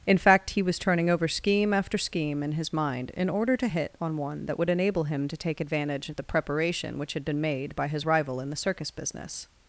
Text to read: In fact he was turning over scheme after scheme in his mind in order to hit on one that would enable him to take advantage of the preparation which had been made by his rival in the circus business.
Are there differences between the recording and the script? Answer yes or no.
no